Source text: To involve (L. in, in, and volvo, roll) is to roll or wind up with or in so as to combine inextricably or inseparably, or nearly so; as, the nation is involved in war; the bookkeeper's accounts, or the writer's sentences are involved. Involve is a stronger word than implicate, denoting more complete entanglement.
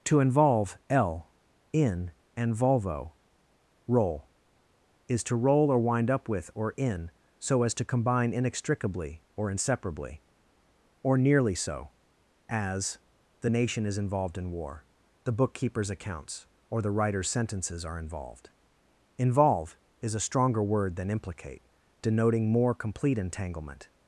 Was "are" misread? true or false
false